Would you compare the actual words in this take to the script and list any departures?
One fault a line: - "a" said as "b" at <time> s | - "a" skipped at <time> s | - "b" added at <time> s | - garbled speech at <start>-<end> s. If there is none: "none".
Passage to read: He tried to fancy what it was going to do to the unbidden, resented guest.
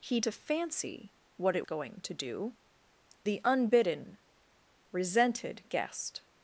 - "tried" skipped at 0.2 s
- "was" skipped at 1.7 s
- "to" skipped at 2.5 s